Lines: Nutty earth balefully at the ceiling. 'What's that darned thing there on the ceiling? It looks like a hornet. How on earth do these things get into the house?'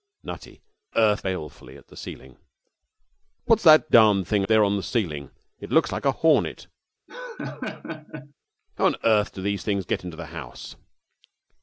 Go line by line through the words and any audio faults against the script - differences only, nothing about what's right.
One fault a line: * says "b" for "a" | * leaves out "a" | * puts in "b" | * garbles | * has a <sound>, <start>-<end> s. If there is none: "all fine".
* has a laugh, 7.1-8.3 s